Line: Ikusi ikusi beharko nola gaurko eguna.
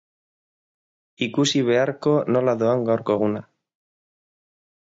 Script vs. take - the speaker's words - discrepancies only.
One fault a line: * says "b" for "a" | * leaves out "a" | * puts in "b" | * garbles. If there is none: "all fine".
* leaves out "ikusi"
* puts in "doan"